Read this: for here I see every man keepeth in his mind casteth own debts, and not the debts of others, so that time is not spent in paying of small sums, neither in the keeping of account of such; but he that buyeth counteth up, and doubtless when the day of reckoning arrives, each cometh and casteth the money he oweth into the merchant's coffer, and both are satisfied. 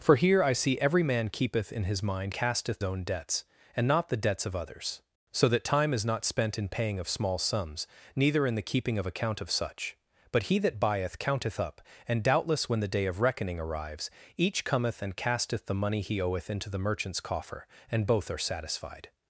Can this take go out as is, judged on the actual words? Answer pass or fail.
pass